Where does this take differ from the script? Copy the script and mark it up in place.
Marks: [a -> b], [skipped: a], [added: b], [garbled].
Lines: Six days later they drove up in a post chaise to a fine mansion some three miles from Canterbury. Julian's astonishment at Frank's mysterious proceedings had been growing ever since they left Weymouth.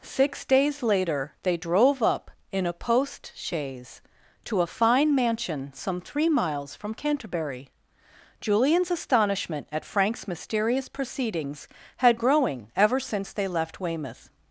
Six days later they drove up in a post chaise to a fine mansion some three miles from Canterbury. Julian's astonishment at Frank's mysterious proceedings had [skipped: been] growing ever since they left Weymouth.